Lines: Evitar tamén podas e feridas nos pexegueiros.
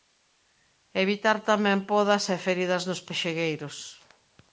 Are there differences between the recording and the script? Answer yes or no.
no